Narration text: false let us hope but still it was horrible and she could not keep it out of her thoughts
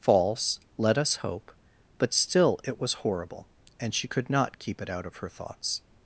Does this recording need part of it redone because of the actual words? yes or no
no